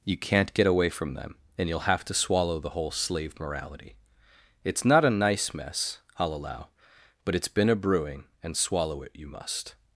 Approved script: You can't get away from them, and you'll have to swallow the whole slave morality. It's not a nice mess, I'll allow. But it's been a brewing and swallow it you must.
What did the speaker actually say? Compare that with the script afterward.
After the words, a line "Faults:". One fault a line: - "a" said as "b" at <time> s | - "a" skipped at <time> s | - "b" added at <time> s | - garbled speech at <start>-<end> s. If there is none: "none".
You can't get away from them, and you'll have to swallow the whole slave morality. It's not a nice mess, I'll allow. But it's been a brewing and swallow it you must.
Faults:
none